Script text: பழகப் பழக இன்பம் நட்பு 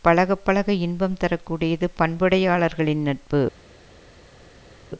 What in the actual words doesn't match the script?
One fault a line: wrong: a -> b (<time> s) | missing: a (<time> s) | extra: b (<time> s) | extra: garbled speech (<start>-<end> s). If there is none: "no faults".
extra: தர கூடியது பண்புடையாளர்களின் (1.2 s)